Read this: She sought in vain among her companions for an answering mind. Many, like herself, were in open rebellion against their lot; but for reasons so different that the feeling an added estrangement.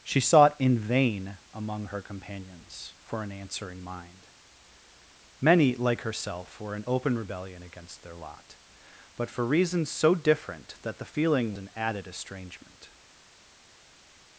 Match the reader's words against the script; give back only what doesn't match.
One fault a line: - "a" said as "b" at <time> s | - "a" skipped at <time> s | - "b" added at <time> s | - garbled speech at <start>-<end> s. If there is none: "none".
none